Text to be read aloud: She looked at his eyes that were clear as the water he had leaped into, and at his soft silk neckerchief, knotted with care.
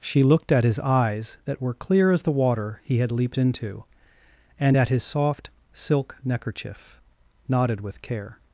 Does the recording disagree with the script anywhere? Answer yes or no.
no